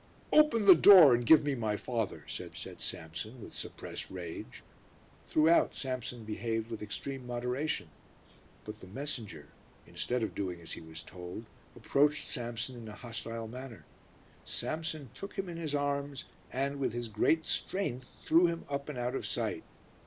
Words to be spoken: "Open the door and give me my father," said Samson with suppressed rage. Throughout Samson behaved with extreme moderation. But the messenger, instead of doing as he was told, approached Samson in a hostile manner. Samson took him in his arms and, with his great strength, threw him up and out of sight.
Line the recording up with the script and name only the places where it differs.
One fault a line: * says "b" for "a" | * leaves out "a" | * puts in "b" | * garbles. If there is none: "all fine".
* puts in "said"